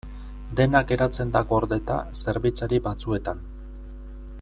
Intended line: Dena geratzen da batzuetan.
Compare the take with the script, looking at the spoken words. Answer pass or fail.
fail